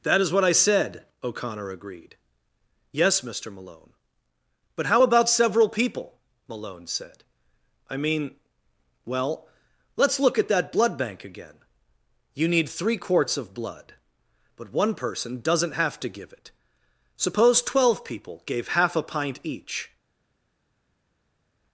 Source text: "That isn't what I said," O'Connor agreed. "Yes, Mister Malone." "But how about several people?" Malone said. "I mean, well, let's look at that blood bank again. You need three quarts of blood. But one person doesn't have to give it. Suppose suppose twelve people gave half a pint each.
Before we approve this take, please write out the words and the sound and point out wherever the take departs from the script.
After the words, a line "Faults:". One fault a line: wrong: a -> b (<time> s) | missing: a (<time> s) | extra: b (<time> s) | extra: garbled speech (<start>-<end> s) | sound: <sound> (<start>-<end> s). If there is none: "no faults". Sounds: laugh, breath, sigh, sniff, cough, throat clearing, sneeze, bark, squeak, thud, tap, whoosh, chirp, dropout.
"That is what I said," O'Connor agreed. "Yes, Mister Malone." "But how about several people?" Malone said. "I mean, well, let's look at that blood bank again. You need three quarts of blood. But one person doesn't have to give it. Suppose twelve people gave half a pint each.
Faults:
wrong: isn't -> is (0.2 s)
missing: suppose (17.6 s)